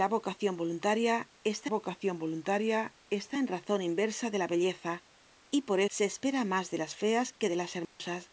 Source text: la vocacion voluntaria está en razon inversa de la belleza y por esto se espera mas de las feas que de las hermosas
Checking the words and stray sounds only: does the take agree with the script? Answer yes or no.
no